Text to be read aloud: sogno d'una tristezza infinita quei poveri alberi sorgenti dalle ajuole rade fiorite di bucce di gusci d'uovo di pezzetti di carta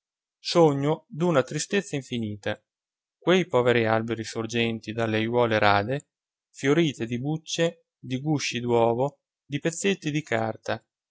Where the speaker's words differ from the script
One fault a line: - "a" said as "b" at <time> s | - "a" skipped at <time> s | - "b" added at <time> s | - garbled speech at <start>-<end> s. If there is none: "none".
none